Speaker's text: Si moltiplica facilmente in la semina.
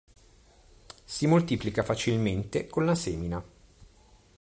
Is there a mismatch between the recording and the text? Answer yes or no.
yes